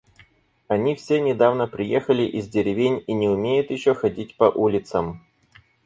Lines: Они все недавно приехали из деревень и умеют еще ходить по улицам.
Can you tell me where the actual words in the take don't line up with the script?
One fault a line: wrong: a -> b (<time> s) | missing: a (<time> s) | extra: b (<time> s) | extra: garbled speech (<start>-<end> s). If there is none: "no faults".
extra: не (3.1 s)